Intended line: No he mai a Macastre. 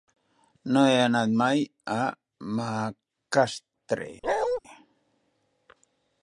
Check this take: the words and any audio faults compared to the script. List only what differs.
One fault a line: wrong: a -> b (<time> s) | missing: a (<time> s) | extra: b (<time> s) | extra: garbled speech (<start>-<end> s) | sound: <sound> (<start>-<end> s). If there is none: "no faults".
extra: anat (1.0 s)
sound: bark (4.2-4.6 s)